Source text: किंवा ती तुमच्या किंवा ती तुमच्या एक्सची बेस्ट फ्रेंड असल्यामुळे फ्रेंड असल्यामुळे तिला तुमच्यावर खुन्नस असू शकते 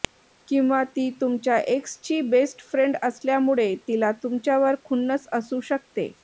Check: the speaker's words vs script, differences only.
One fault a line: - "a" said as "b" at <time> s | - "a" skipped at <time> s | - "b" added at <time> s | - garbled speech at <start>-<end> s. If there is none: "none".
- "किंवा ती तुमच्या" skipped at 1.6 s
- "फ्रेंड असल्यामुळे" skipped at 3.7 s